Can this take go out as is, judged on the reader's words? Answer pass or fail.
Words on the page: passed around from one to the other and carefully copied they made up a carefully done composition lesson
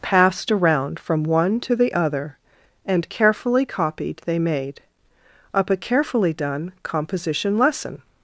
pass